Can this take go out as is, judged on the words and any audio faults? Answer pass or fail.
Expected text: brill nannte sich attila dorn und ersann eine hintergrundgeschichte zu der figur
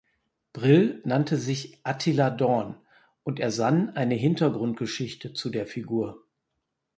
pass